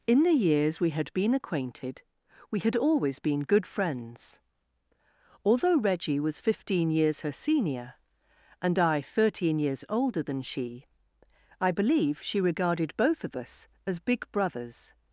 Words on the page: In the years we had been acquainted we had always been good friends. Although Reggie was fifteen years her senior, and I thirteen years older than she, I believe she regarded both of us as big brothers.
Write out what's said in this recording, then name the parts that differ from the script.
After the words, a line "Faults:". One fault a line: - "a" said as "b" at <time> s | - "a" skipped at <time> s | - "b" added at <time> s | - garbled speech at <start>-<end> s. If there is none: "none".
In the years we had been acquainted we had always been good friends. Although Reggie was fifteen years her senior, and I thirteen years older than she, I believe she regarded both of us as big brothers.
Faults:
none